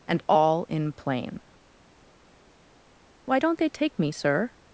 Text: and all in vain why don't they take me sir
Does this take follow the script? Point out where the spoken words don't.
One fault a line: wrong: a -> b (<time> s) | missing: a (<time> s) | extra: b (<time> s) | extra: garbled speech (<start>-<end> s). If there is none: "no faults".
wrong: vain -> plain (0.9 s)